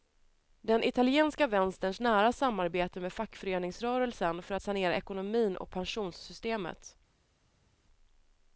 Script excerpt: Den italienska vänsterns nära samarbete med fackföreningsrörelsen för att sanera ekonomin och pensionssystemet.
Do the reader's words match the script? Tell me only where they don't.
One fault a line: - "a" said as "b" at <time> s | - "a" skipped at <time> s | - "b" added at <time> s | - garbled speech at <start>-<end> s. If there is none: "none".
none